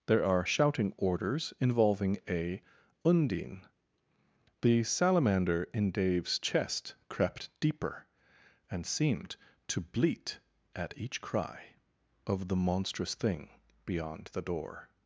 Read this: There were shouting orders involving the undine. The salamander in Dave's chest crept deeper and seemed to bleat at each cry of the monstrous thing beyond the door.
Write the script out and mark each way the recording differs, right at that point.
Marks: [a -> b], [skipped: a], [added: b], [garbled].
There [were -> are] shouting orders involving [the -> a] undine. The salamander in Dave's chest crept deeper and seemed to bleat at each cry of the monstrous thing beyond the door.